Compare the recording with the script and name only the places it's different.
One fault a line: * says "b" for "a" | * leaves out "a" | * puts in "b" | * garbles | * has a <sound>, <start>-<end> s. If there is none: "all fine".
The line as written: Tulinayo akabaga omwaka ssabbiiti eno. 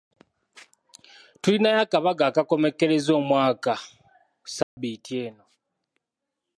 * puts in "akakomekkereza"
* has a dropout, 4.6-4.8 s